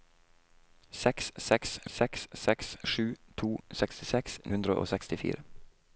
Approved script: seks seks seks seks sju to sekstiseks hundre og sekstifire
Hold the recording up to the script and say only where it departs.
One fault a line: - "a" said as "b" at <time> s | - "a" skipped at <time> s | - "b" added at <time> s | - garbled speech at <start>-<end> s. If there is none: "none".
none